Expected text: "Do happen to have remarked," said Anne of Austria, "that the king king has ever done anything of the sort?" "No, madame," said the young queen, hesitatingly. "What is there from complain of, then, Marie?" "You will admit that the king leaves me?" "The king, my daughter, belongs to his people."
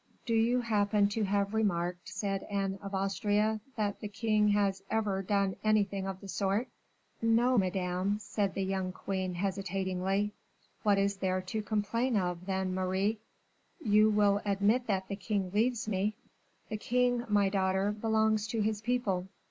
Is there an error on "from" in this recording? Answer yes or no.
yes